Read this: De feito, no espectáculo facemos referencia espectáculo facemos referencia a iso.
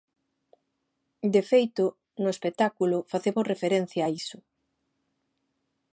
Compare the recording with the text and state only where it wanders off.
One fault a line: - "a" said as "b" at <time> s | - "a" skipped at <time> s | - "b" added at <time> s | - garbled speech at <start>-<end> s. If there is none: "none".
- "espectáculo facemos referencia" skipped at 4.0 s